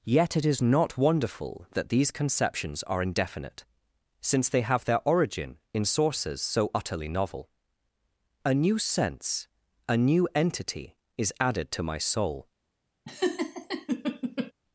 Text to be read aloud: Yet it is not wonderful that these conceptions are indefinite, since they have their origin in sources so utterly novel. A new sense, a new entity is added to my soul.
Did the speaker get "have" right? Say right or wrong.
right